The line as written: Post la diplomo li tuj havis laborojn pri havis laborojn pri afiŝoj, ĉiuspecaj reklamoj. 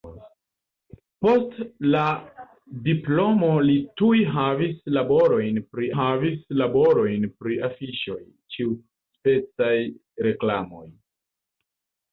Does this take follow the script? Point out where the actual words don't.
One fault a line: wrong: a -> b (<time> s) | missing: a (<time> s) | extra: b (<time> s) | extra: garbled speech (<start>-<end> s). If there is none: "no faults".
no faults